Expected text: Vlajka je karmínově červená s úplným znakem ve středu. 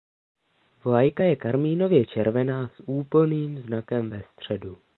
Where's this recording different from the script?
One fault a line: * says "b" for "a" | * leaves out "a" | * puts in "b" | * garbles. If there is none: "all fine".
all fine